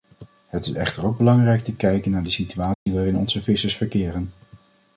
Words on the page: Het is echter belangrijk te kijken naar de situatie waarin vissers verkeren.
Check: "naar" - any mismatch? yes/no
no